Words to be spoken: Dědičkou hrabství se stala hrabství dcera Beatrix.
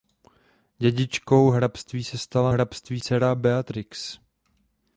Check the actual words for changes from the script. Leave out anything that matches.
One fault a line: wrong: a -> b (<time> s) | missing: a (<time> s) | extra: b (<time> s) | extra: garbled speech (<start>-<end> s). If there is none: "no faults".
no faults